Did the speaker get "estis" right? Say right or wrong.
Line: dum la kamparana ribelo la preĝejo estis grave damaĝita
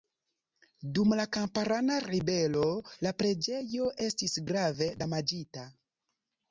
right